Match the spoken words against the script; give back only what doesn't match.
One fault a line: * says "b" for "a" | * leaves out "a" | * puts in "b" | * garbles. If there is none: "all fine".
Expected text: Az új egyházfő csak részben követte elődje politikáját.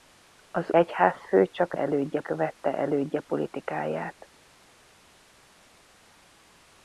* leaves out "új"
* says "elődje" for "részben"